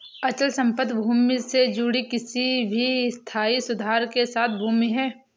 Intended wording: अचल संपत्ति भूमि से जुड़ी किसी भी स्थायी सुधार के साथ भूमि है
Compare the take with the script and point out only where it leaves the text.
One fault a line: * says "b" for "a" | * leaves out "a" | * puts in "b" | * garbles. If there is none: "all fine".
all fine